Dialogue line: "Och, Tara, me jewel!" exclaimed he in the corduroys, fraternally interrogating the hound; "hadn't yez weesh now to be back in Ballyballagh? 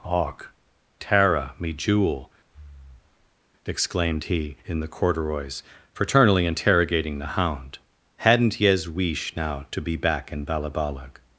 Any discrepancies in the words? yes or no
no